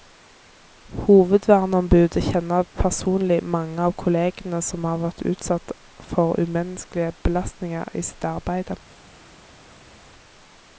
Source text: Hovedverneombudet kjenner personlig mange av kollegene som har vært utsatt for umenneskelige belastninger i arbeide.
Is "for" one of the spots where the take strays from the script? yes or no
no